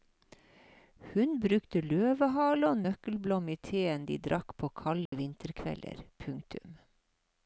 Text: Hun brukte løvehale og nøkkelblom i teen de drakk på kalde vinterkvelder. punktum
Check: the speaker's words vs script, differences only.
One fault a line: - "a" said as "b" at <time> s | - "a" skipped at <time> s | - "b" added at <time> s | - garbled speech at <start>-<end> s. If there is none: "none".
none